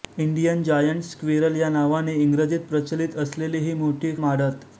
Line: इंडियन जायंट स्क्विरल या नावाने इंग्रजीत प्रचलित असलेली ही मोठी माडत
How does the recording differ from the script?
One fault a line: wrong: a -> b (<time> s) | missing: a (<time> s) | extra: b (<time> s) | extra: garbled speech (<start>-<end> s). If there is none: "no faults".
no faults